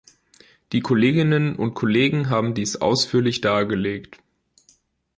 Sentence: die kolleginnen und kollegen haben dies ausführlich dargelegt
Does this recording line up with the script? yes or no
yes